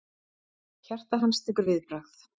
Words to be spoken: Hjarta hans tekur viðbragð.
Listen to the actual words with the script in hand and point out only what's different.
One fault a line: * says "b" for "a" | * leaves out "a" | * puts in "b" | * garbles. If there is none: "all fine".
all fine